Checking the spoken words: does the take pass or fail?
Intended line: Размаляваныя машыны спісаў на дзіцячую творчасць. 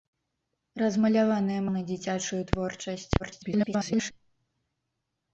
fail